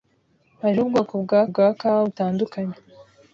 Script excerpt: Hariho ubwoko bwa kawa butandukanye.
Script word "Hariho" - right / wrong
right